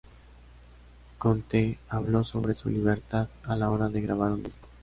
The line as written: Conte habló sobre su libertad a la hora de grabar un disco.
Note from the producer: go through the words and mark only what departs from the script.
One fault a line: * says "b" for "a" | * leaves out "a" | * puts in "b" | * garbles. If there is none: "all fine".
all fine